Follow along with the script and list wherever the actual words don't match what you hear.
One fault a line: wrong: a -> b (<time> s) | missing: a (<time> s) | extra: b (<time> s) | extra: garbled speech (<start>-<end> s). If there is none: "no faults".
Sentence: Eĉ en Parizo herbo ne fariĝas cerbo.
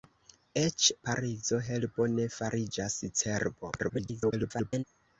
missing: en (0.8 s)
extra: garbled speech (3.8-4.8 s)